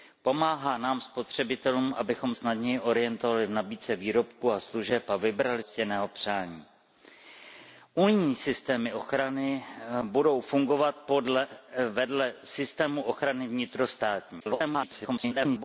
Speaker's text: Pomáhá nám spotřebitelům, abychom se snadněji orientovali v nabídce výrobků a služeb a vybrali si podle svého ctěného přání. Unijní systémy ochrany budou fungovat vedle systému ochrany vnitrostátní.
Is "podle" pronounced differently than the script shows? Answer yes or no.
yes